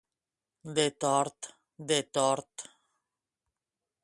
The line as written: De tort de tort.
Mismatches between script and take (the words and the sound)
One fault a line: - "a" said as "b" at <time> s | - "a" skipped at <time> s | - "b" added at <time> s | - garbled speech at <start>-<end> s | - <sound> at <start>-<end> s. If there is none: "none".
none